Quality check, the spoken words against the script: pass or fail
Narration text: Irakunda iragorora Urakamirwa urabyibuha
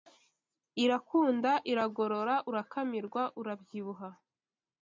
pass